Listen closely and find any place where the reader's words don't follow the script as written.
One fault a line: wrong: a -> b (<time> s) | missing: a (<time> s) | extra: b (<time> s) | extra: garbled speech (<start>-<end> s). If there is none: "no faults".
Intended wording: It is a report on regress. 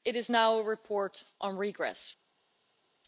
extra: now (0.3 s)